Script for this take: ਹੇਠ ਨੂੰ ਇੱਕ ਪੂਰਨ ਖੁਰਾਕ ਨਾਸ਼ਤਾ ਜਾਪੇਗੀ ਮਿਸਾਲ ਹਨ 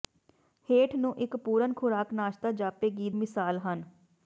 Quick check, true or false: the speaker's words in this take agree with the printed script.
true